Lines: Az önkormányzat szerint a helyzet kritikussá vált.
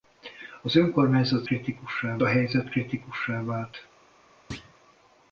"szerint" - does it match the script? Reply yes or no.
no